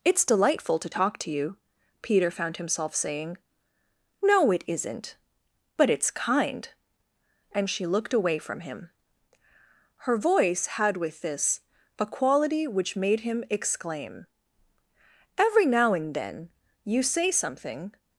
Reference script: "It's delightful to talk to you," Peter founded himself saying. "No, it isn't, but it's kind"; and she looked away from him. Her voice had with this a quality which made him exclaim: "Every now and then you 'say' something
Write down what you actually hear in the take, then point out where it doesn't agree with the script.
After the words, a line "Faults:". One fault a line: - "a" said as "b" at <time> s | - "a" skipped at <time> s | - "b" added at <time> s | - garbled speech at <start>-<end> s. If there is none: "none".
"It's delightful to talk to you," Peter found himself saying. "No, it isn't, but it's kind"; and she looked away from him. Her voice had with this a quality which made him exclaim: "Every now and then you 'say' something
Faults:
- "founded" said as "found" at 2.3 s